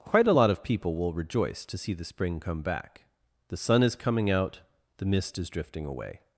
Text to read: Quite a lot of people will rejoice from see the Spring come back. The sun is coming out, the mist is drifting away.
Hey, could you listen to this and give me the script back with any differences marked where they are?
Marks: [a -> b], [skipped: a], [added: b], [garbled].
Quite a lot of people will rejoice [from -> to] see the Spring come back. The sun is coming out, the mist is drifting away.